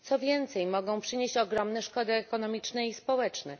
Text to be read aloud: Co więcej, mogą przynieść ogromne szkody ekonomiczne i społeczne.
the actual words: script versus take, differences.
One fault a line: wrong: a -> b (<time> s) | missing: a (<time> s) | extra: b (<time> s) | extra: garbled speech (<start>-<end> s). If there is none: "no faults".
no faults